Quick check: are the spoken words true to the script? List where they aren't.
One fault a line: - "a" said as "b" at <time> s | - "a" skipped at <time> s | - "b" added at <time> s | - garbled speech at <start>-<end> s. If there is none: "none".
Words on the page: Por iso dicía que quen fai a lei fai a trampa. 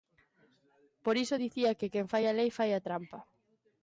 none